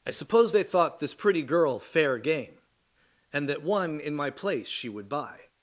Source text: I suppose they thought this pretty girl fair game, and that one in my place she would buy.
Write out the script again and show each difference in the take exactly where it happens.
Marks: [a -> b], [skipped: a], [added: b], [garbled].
I suppose they thought this pretty girl fair game, and that one in my place she would buy.